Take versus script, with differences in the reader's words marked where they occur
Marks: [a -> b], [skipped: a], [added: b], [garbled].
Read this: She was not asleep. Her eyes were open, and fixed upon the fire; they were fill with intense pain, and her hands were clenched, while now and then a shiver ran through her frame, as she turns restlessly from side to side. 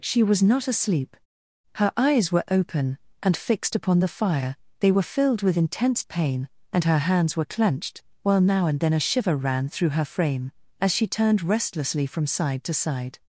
She was not asleep. Her eyes were open, and fixed upon the fire; they were [fill -> filled] with intense pain, and her hands were clenched, while now and then a shiver ran through her frame, as she [turns -> turned] restlessly from side to side.